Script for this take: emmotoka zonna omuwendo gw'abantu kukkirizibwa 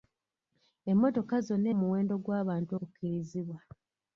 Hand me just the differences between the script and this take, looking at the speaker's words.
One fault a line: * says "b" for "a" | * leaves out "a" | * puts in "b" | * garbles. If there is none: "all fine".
all fine